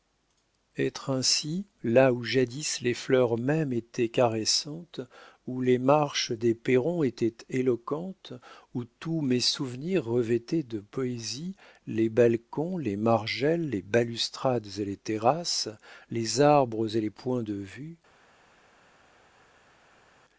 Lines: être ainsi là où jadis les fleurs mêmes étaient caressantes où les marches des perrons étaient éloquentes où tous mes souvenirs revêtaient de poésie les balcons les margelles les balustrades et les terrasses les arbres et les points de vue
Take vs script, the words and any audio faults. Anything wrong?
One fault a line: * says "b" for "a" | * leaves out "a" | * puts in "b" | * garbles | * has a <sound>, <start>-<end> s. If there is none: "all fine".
all fine